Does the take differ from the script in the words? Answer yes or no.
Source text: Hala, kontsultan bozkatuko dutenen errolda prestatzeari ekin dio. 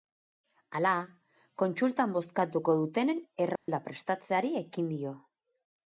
no